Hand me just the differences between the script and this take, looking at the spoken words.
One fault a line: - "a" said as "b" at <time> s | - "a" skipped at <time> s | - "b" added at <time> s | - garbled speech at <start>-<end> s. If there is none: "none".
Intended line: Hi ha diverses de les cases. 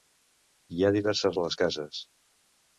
none